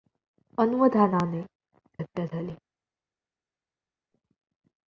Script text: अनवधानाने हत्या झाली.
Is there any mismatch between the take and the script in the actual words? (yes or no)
no